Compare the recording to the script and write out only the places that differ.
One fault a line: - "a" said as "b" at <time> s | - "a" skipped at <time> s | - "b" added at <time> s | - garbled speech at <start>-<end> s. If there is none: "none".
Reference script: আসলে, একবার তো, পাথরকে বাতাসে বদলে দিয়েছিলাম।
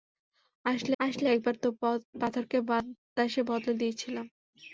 - "আসলে" added at 1.0 s